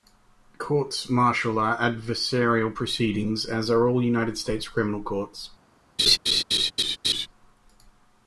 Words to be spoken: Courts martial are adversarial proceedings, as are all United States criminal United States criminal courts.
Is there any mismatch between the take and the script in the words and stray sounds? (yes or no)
yes